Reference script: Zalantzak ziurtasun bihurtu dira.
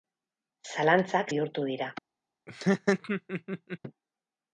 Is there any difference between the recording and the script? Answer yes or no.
yes